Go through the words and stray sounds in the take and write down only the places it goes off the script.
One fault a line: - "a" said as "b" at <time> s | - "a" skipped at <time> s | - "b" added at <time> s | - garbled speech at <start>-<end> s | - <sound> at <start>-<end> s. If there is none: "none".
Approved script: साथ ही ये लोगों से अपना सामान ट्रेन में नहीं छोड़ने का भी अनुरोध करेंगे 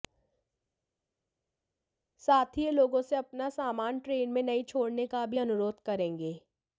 none